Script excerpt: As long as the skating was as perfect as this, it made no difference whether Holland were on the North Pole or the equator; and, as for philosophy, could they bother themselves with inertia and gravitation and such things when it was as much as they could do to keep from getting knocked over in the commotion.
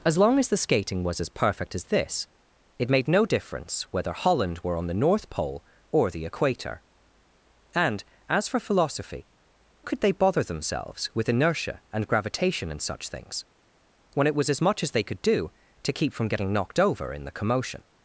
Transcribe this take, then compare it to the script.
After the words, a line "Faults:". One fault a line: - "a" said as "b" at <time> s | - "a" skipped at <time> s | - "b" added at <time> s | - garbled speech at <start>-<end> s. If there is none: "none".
As long as the skating was as perfect as this, it made no difference whether Holland were on the North Pole or the equator; and, as for philosophy, could they bother themselves with inertia and gravitation and such things when it was as much as they could do to keep from getting knocked over in the commotion.
Faults:
none